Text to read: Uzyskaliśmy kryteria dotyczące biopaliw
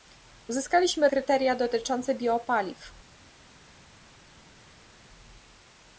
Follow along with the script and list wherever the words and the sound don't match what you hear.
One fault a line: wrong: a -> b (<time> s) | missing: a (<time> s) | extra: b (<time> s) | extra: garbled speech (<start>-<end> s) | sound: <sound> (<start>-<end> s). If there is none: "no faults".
no faults